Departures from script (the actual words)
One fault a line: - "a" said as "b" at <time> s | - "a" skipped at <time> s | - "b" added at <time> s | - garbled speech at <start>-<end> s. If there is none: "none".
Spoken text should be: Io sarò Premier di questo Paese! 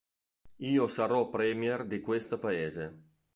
none